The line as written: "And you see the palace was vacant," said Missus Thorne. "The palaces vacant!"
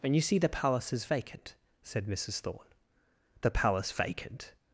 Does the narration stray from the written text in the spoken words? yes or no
yes